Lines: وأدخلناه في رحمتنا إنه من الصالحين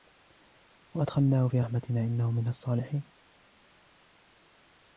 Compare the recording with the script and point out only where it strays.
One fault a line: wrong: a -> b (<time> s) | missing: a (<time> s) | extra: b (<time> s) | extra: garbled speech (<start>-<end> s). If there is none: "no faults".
no faults